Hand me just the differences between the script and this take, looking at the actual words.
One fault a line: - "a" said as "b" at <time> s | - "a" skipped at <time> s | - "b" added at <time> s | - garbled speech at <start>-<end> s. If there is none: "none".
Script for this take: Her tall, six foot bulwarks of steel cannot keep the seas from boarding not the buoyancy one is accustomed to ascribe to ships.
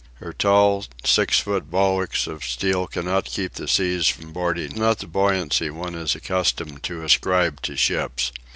none